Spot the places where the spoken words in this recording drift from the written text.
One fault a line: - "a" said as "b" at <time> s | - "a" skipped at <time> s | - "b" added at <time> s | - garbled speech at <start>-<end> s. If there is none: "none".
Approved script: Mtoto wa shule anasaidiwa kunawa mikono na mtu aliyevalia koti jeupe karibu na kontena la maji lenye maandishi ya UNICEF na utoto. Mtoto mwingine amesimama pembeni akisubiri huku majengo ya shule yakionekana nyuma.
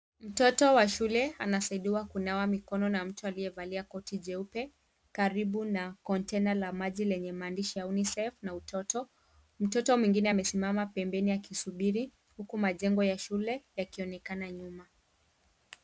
none